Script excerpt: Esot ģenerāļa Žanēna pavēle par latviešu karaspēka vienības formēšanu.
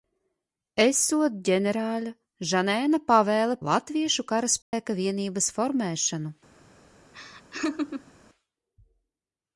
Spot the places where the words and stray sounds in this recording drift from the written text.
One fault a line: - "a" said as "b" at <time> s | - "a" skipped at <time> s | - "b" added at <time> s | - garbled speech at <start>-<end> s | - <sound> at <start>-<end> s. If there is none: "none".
- "par" skipped at 3.6 s
- dropout at 4.6-4.7 s
- laugh at 7.1-8.1 s